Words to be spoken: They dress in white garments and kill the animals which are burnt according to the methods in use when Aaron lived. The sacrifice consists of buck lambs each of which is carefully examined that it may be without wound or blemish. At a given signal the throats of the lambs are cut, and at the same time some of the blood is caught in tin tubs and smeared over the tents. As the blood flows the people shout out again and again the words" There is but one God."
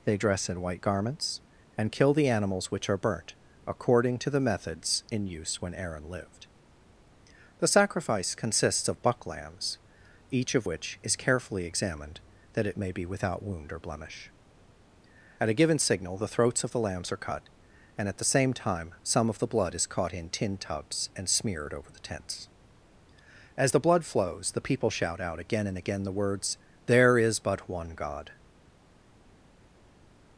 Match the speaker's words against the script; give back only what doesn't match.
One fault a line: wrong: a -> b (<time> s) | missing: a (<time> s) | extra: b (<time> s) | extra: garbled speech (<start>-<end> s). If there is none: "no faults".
no faults